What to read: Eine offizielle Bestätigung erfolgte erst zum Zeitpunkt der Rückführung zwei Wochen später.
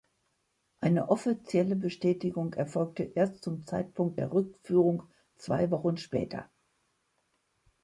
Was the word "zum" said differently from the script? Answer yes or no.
no